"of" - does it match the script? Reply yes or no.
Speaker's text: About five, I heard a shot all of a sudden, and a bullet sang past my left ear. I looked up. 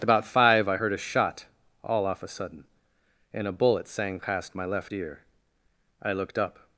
no